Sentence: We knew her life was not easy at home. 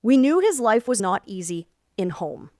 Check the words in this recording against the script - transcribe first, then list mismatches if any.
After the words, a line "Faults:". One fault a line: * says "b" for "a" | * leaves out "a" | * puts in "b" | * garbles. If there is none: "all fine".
We knew his life was not easy in home.
Faults:
* says "his" for "her"
* says "in" for "at"